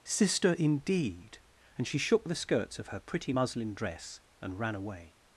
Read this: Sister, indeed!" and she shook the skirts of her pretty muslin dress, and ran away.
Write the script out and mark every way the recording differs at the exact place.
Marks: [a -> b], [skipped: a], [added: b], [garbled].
Sister, indeed!" and she shook the skirts of her pretty muslin dress, and ran away.